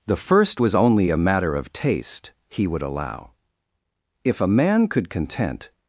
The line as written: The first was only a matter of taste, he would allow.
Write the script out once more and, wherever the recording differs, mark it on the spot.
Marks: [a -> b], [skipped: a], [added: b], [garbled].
The first was only a matter of taste, he would allow. [added: If a man could content]